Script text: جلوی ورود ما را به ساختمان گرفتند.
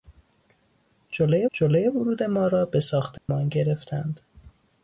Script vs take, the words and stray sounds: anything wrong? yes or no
yes